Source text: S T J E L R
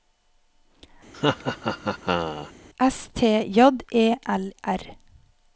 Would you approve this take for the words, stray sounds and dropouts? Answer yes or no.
no